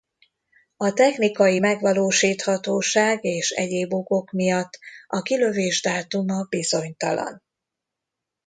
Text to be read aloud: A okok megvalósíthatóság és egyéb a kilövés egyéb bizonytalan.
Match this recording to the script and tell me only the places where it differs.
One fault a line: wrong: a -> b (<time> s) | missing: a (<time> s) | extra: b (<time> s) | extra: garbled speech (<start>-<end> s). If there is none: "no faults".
wrong: okok -> technikai (0.9 s)
extra: okok miatt (3.9 s)
wrong: egyéb -> dátuma (5.8 s)